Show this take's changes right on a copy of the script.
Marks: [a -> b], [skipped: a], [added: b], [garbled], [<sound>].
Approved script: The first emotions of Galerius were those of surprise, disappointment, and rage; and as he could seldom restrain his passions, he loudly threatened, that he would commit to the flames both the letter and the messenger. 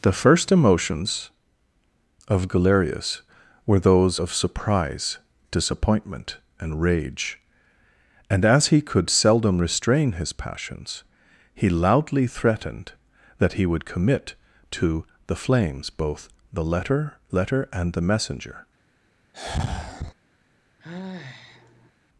The first emotions of Galerius were those of surprise, disappointment, and rage; and as he could seldom restrain his passions, he loudly threatened, that he would commit to the flames both the letter [added: letter] and the messenger. [sigh] [sigh]